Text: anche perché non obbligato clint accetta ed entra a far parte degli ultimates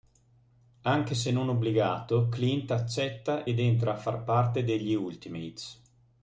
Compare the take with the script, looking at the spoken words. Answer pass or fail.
fail